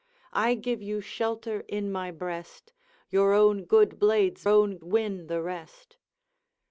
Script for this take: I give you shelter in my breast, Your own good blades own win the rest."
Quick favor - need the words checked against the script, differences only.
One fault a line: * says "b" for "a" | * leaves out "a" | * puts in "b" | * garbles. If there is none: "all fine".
all fine